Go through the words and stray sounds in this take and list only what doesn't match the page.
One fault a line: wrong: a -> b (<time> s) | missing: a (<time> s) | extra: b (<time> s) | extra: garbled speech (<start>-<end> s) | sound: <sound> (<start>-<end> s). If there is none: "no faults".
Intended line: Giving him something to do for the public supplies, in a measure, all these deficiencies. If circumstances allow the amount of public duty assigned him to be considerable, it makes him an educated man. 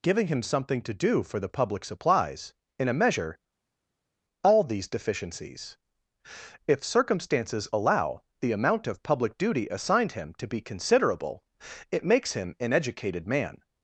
no faults